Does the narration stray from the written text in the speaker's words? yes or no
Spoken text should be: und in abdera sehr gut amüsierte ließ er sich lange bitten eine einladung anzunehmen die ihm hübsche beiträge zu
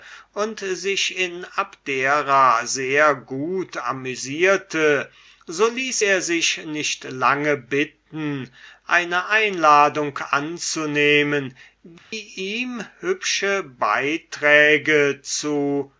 yes